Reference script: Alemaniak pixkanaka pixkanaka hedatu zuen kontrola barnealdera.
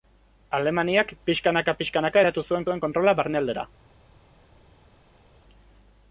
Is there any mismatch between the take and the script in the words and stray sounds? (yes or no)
yes